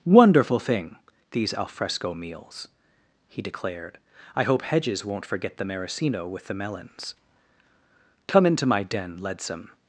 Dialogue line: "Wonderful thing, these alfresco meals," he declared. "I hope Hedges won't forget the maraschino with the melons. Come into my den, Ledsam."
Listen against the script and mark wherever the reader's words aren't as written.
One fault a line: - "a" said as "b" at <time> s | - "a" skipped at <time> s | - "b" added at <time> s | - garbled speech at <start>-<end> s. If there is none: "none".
none